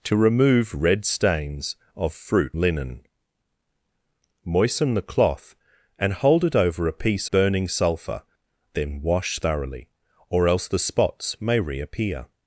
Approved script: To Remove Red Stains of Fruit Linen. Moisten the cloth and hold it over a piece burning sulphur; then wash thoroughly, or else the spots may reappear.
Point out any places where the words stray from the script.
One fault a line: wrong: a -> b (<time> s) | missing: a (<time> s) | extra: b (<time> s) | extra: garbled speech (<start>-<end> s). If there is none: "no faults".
no faults